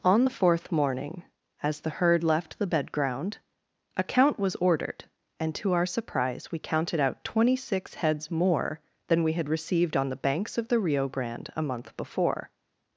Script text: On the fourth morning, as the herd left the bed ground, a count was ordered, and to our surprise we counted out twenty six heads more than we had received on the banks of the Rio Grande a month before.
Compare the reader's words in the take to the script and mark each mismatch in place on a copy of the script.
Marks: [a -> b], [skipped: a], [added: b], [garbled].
On the fourth morning, as the herd left the bed ground, a count was ordered, and to our surprise we counted out twenty six heads more than we had received on the banks of the Rio Grande a month before.